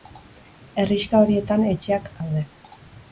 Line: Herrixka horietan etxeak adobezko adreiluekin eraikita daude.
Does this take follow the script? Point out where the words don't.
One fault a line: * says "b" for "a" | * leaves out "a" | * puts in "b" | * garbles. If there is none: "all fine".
* leaves out "adobezko adreiluekin eraikita"